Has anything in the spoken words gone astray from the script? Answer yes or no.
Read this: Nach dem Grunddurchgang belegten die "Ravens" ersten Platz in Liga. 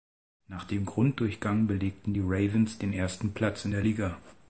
yes